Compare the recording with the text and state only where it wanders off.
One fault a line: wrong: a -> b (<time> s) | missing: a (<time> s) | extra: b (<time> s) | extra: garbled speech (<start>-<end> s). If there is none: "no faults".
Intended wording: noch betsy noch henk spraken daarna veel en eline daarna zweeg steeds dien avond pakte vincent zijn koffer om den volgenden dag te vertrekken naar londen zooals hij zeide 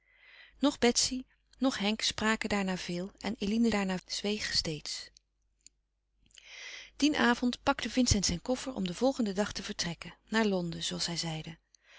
no faults